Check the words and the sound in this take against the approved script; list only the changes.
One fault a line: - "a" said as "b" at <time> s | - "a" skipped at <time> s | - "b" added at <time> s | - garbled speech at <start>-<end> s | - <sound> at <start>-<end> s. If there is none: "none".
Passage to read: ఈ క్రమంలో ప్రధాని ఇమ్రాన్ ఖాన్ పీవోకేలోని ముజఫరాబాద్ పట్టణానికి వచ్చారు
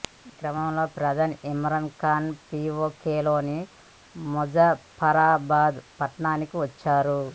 none